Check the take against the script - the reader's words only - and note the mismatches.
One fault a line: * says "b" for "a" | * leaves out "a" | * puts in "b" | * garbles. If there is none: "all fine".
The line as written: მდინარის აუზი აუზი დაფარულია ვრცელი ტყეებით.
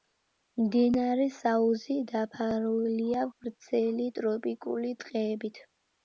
* leaves out "აუზი"
* puts in "ტროპიკული"